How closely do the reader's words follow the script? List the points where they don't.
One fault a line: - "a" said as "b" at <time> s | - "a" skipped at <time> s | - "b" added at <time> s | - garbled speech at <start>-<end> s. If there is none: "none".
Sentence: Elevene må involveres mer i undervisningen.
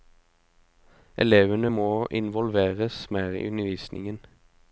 none